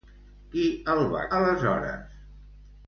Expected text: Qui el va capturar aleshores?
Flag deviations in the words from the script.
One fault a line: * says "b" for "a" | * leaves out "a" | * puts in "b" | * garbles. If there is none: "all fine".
* leaves out "capturar"